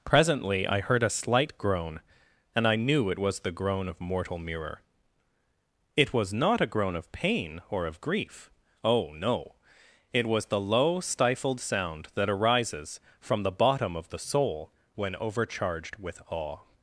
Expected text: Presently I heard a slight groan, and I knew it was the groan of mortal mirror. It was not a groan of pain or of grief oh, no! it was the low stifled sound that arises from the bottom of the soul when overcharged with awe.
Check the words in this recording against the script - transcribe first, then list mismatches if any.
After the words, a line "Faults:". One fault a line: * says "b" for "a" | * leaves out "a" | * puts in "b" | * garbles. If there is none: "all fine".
Presently I heard a slight groan, and I knew it was the groan of mortal mirror. It was not a groan of pain or of grief oh, no! it was the low stifled sound that arises from the bottom of the soul when overcharged with awe.
Faults:
all fine